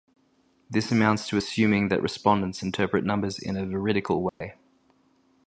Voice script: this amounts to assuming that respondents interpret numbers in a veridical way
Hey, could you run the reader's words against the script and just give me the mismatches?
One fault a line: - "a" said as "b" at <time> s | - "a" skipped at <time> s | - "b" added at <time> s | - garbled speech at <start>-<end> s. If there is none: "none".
none